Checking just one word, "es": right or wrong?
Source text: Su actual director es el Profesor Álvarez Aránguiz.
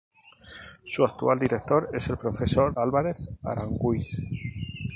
right